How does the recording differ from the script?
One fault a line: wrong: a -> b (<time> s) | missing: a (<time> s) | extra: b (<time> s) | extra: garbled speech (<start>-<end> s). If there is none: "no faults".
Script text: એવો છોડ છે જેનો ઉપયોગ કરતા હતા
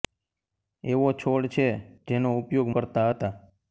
no faults